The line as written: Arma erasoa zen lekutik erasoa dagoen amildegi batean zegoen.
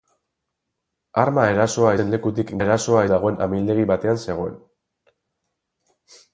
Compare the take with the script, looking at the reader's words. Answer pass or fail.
pass